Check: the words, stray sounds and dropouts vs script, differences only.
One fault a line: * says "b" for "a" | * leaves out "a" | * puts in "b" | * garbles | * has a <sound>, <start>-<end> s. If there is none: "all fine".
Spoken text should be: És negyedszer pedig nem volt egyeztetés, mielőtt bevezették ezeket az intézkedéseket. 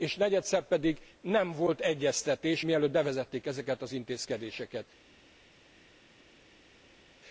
all fine